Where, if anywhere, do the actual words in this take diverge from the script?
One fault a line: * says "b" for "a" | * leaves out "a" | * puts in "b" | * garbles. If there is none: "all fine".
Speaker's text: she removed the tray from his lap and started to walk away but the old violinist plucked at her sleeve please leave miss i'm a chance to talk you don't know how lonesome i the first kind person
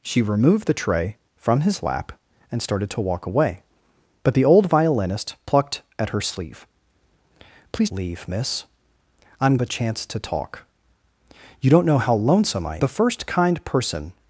all fine